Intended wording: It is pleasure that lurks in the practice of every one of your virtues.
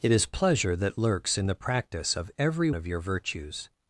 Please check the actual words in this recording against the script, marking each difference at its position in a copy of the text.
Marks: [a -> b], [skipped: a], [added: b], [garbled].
It is pleasure that lurks in the practice of every [skipped: one] of your virtues.